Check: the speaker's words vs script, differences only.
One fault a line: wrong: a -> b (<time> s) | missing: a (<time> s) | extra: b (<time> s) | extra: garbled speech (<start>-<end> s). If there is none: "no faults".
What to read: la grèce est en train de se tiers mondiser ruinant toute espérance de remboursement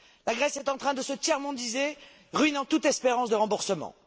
no faults